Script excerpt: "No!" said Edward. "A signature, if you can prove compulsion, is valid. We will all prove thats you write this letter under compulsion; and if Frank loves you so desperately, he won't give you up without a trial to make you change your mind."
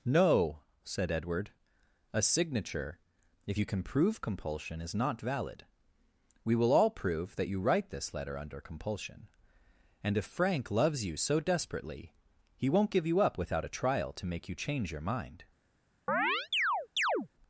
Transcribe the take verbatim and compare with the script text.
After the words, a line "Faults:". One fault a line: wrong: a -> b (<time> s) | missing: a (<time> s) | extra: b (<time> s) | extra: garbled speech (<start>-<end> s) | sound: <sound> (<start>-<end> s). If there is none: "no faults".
"No!" said Edward. "A signature, if you can prove compulsion, is not valid. We will all prove that you write this letter under compulsion; and if Frank loves you so desperately, he won't give you up without a trial to make you change your mind."
Faults:
extra: not (4.9 s)
wrong: thats -> that (7.3 s)
sound: chirp (16.1-17.3 s)